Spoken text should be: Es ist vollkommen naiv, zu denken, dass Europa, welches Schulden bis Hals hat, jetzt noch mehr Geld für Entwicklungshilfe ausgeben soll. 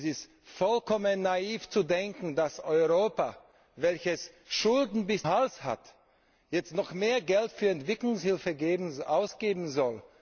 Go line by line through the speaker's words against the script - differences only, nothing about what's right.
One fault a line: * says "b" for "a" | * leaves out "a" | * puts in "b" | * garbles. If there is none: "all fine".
all fine